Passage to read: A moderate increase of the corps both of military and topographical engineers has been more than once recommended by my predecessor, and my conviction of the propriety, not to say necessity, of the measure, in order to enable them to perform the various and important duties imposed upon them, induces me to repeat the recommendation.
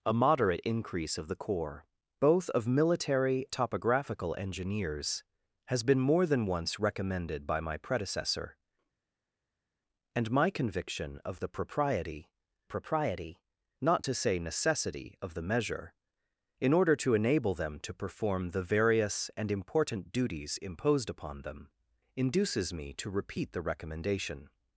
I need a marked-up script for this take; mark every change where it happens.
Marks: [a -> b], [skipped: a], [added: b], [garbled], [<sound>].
A moderate increase of the corps both of military [skipped: and] topographical engineers has been more than once recommended by my predecessor, and my conviction of the propriety, [added: propriety] not to say necessity, of the measure, in order to enable them to perform the various and important duties imposed upon them, induces me to repeat the recommendation.